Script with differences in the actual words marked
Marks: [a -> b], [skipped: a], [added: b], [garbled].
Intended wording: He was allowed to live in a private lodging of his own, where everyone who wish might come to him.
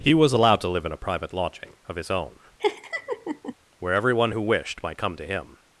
He was allowed to live in a private lodging of his own, where everyone who [wish -> wished] might come to him.